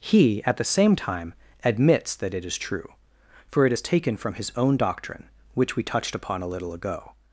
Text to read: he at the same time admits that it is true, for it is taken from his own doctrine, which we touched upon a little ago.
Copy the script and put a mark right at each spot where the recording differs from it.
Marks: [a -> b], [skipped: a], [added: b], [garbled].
he at the same time admits that it is true, for it is taken from his own doctrine, which we touched upon a little ago.